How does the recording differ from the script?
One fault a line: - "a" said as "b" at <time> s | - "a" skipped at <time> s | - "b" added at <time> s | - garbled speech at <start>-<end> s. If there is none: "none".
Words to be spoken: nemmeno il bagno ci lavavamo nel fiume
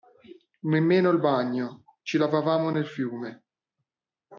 none